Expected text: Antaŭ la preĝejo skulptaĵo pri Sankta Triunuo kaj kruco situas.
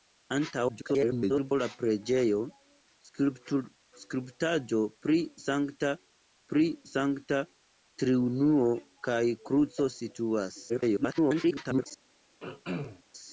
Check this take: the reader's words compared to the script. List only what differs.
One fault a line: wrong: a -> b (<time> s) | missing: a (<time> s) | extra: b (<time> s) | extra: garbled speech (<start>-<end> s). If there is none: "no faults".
extra: garbled speech (0.7-1.5 s)
extra: pri Sankta (6.5 s)
extra: garbled speech (10.7-11.9 s)